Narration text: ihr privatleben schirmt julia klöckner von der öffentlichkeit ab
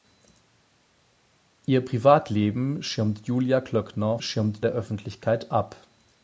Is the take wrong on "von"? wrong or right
wrong